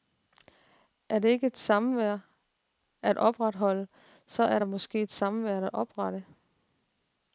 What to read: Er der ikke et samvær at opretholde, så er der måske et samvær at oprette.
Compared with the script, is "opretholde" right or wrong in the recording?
right